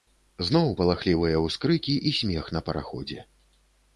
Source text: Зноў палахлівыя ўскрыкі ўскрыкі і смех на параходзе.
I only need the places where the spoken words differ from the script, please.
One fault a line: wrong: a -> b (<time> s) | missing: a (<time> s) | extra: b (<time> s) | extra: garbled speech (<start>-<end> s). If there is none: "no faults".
missing: ўскрыкі (1.9 s)